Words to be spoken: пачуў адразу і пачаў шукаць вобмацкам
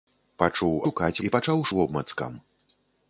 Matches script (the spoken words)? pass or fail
fail